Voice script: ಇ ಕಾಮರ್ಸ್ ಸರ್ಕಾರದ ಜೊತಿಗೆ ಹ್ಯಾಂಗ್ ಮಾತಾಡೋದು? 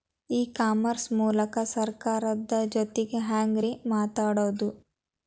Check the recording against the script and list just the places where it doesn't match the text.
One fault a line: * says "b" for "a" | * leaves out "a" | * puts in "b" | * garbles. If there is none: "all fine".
* puts in "ಮೂಲಕ"
* puts in "ರೇ"